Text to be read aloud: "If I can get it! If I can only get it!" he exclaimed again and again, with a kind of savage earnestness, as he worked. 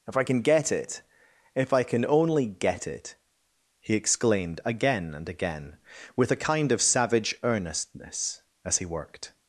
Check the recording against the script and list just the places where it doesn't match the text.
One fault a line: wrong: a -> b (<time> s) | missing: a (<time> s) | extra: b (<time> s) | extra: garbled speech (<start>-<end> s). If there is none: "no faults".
no faults